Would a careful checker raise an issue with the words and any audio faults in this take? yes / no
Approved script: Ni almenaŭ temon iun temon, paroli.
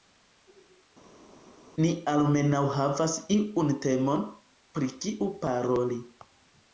yes